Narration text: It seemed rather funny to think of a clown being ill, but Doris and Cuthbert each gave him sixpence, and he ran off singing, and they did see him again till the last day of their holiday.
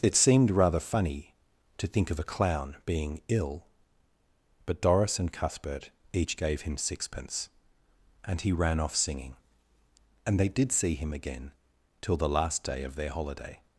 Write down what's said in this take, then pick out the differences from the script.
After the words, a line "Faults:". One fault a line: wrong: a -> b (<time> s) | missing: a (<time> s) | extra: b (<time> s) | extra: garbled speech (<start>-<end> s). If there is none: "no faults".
It seemed rather funny to think of a clown being ill, but Doris and Cuthbert each gave him sixpence, and he ran off singing, and they did see him again till the last day of their holiday.
Faults:
no faults